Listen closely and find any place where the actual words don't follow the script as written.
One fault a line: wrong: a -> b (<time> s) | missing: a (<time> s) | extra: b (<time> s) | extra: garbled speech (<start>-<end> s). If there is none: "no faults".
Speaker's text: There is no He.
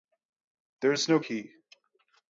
no faults